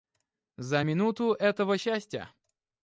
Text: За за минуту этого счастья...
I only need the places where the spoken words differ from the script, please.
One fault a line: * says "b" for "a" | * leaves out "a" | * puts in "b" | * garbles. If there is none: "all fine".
* leaves out "за"